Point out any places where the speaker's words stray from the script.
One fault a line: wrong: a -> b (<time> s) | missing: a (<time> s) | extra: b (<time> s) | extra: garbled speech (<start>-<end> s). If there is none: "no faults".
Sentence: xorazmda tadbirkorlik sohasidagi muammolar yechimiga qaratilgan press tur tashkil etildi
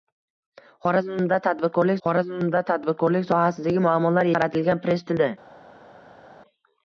extra: xorazmda tadbirkorlik (2.1 s)
missing: yechimiga (4.3 s)
missing: tur tashkil (5.1 s)